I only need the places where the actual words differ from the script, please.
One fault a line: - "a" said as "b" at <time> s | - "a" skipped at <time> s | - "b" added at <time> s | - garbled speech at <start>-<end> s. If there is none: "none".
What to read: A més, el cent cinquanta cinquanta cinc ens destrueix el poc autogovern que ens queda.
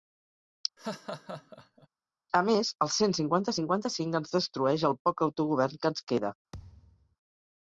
none